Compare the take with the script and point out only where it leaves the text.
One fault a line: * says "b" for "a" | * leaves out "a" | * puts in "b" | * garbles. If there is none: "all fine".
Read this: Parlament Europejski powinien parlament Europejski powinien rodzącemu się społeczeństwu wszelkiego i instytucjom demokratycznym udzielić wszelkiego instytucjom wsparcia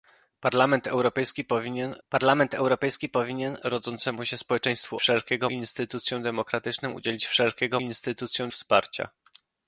all fine